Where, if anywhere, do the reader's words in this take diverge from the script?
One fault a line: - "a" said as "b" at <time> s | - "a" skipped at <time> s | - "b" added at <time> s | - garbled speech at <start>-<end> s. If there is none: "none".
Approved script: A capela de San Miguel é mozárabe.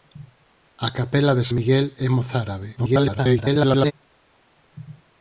- "San" skipped at 1.4 s
- garbled speech at 2.8-3.9 s